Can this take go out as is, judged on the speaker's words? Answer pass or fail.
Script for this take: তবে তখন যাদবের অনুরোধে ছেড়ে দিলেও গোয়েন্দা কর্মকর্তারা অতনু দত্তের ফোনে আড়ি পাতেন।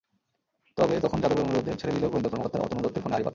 pass